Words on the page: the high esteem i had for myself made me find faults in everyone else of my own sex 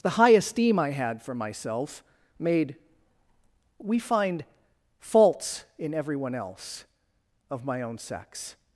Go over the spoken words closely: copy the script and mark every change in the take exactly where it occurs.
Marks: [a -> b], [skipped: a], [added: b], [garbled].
the high esteem i had for myself made [me -> we] find faults in everyone else of my own sex